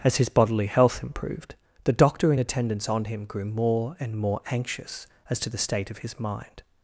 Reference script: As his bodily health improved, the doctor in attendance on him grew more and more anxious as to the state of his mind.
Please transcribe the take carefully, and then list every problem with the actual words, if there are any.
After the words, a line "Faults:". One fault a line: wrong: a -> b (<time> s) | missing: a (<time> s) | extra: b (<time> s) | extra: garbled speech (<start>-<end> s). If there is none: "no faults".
As his bodily health improved, the doctor in attendance on him grew more and more anxious as to the state of his mind.
Faults:
no faults